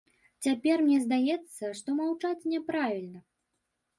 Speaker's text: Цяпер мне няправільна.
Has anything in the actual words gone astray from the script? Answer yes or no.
yes